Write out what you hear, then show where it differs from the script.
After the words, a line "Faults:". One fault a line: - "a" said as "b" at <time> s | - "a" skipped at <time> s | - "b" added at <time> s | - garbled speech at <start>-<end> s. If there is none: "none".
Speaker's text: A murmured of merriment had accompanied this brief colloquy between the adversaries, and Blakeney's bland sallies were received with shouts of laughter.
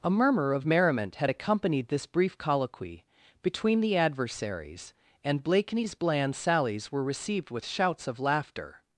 A murmur of merriment had accompanied this brief colloquy between the adversaries, and Blakeney's bland sallies were received with shouts of laughter.
Faults:
- "murmured" said as "murmur" at 0.1 s